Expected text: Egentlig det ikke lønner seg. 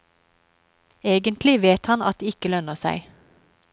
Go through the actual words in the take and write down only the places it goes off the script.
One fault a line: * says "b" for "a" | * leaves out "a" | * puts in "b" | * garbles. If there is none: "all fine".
* puts in "vet han at"